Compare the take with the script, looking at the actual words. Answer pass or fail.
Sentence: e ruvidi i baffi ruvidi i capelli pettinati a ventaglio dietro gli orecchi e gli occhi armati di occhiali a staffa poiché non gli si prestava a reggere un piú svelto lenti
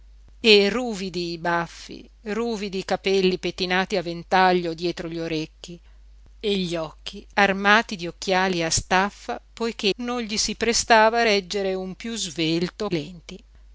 pass